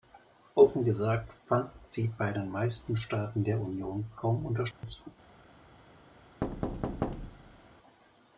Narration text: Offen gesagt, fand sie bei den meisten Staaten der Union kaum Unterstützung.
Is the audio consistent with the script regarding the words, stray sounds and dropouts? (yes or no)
no